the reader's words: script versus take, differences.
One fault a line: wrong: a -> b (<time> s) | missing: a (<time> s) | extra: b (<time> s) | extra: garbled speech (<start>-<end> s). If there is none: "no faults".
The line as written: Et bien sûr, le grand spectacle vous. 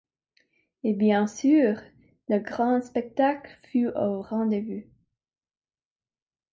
extra: fut au rendez (3.7 s)